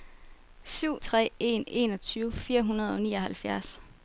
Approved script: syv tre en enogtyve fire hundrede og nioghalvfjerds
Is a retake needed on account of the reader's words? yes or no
no